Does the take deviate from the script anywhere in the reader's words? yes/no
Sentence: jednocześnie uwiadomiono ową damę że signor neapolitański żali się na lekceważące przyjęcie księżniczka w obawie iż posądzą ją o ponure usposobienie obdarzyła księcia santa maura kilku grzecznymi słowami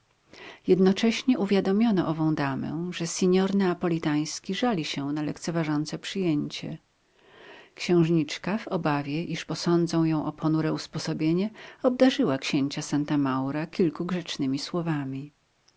no